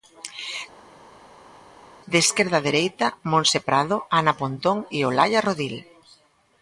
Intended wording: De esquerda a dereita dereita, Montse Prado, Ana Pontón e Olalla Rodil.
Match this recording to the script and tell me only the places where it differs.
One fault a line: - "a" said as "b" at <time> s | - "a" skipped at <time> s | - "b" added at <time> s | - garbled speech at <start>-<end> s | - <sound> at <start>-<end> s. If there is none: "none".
- "dereita" skipped at 3.1 s